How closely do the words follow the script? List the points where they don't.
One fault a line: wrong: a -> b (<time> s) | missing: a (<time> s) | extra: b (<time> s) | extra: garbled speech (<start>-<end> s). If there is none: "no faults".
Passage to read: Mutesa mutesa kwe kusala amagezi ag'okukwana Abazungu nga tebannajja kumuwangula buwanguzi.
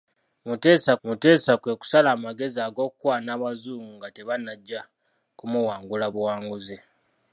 no faults